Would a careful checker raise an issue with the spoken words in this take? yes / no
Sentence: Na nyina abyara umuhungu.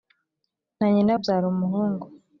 no